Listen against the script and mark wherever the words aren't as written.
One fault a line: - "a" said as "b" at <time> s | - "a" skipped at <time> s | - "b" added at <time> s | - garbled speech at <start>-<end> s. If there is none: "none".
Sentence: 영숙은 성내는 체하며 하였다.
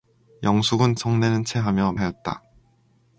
none